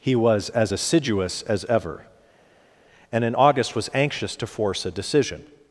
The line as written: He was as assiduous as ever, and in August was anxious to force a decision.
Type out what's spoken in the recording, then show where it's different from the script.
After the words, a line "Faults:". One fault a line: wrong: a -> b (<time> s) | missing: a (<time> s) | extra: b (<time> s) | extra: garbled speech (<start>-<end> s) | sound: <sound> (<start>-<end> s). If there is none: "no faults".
He was as assiduous as ever, and in August was anxious to force a decision.
Faults:
no faults